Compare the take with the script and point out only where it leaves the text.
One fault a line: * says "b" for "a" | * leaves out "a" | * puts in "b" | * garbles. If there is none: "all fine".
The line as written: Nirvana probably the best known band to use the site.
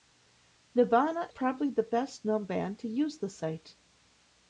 all fine